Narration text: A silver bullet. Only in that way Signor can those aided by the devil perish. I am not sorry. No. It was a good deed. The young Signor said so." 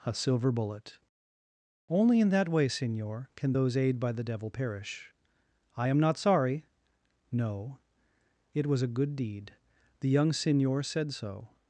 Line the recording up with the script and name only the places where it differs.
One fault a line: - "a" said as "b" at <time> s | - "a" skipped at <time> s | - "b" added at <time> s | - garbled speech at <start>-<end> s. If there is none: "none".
- "aided" said as "aid" at 3.8 s